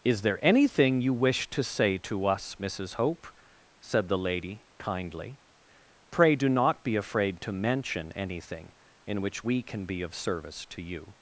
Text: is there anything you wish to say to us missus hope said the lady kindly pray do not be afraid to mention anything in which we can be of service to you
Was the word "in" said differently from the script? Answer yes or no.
no